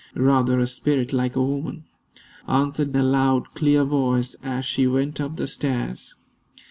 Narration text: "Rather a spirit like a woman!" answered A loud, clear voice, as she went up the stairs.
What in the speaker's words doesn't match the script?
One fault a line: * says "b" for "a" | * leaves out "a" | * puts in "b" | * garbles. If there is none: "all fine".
all fine